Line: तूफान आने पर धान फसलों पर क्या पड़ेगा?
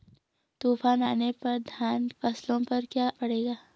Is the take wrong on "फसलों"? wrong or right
right